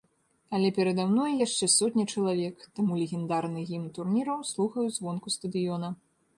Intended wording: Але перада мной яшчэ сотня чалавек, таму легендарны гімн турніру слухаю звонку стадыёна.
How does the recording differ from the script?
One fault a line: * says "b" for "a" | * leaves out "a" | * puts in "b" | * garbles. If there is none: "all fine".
all fine